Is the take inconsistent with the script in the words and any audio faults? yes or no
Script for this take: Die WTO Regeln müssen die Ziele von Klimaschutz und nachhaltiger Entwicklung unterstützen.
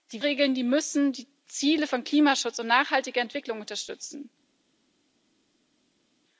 yes